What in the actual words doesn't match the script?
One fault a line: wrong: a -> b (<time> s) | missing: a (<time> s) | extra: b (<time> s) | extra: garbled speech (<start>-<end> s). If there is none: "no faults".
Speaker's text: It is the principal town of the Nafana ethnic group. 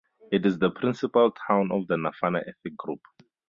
no faults